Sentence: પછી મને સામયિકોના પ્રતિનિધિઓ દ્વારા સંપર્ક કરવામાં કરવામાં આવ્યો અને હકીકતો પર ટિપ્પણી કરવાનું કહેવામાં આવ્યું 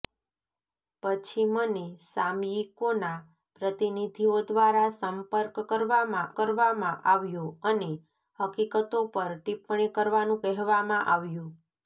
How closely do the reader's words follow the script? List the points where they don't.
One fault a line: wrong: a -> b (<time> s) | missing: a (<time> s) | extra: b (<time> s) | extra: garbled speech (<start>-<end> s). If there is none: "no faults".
no faults